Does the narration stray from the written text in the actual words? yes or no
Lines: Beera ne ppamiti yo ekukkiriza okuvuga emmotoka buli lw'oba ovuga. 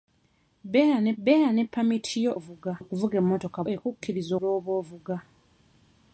yes